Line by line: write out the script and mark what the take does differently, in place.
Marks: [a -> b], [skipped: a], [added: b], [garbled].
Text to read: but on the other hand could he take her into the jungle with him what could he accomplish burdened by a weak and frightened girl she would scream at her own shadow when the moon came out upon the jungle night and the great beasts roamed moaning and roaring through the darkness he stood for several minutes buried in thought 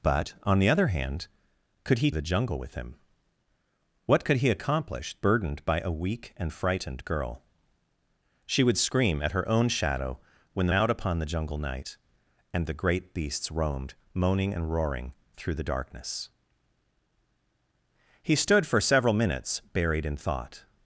but on the other hand could he [skipped: take her into] the jungle with him what could he accomplish burdened by a weak and frightened girl she would scream at her own shadow when the [skipped: moon came] out upon the jungle night and the great beasts roamed moaning and roaring through the darkness he stood for several minutes buried in thought